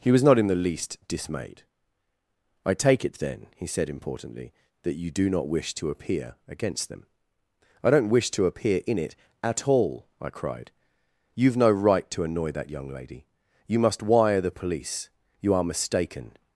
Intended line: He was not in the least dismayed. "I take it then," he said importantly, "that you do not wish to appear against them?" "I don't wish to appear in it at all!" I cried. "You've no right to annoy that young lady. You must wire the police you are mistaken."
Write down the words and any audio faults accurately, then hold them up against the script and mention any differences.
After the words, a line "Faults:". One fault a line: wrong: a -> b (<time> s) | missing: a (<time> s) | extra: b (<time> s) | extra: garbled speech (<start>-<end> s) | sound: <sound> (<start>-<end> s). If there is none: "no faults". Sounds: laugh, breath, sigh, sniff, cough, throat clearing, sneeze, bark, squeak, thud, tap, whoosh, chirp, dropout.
He was not in the least dismayed. "I take it then," he said importantly, "that you do not wish to appear against them?" "I don't wish to appear in it at all!" I cried. "You've no right to annoy that young lady. You must wire the police you are mistaken."
Faults:
no faults